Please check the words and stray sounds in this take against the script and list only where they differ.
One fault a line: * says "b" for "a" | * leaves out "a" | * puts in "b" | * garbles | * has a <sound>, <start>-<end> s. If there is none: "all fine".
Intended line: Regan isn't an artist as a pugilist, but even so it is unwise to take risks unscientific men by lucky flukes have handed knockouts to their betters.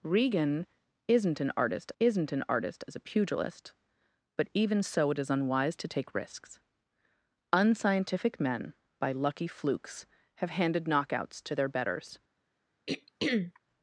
* puts in "isn't an artist"
* has a throat clearing, 12.9-13.6 s